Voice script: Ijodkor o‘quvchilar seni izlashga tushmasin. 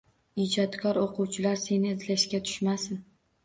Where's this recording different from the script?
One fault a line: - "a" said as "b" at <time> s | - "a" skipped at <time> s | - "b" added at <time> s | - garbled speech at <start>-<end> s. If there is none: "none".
none